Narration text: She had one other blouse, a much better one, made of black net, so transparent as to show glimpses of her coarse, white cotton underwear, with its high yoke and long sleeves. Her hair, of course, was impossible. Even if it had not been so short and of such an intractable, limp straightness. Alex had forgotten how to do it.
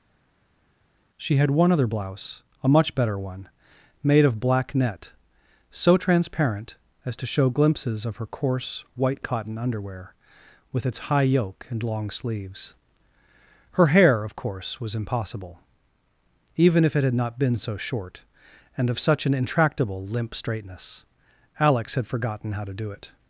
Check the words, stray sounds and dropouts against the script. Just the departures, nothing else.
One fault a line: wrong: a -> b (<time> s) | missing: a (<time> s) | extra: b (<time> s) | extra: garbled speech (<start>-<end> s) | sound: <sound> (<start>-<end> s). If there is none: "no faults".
no faults